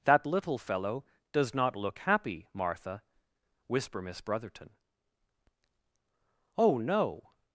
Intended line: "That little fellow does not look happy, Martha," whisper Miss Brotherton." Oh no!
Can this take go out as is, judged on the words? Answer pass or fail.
pass